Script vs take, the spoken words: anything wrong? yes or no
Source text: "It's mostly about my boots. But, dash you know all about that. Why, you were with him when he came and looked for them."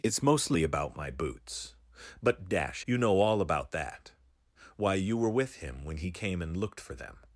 no